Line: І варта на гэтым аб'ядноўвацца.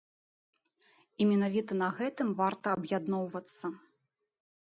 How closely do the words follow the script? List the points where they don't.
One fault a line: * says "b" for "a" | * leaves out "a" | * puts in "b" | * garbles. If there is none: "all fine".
* says "менавіта" for "варта"
* puts in "варта"